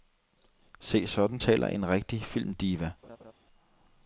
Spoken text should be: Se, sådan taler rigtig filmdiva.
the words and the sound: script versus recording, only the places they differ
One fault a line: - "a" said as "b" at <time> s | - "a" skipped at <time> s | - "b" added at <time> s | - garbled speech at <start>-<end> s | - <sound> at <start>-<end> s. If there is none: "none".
- "en" added at 1.7 s
- laugh at 3.0-3.3 s